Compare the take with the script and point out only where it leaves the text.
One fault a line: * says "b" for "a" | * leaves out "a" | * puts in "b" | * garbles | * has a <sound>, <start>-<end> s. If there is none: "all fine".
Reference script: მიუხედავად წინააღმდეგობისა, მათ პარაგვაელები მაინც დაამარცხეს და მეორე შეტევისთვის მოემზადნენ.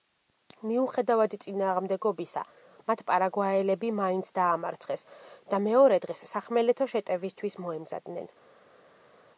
* puts in "დღეს სახმელეთო"